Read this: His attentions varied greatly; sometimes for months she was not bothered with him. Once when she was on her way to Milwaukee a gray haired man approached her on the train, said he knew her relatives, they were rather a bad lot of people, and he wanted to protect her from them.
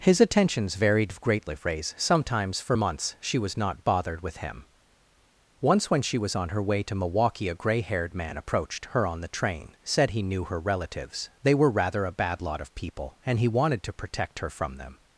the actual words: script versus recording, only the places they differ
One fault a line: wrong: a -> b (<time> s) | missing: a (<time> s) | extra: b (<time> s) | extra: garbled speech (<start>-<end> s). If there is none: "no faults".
extra: phrase (1.6 s)